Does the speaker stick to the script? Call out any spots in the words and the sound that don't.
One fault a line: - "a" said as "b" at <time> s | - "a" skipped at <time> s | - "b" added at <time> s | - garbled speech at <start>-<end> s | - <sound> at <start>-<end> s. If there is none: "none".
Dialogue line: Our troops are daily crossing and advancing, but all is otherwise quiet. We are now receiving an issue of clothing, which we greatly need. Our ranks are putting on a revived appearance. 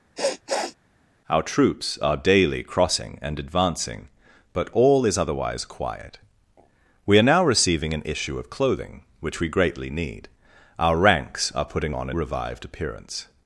- sniff at 0.2-0.7 s